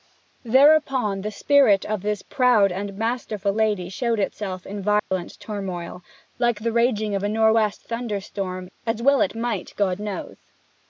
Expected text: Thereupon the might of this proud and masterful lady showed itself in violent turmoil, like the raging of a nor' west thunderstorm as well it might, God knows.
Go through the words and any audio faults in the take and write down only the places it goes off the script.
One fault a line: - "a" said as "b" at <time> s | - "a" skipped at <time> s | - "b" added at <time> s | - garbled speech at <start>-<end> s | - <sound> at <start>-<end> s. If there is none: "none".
- "might" said as "spirit" at 1.3 s
- dropout at 5.0-5.1 s